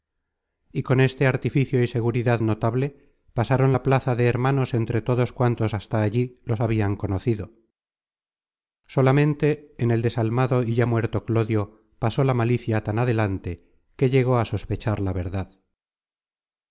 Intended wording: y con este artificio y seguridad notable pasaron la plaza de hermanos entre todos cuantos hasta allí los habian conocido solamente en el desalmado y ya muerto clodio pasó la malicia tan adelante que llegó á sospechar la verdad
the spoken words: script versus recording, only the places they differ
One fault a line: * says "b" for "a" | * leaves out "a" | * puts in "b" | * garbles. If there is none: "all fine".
all fine